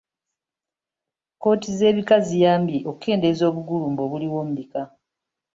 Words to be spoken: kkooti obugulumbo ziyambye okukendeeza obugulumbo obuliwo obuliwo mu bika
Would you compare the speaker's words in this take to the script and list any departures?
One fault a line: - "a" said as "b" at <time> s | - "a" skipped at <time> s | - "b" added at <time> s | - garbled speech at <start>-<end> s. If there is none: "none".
- "obugulumbo" said as "z'ebika" at 1.8 s
- "obuliwo" skipped at 4.4 s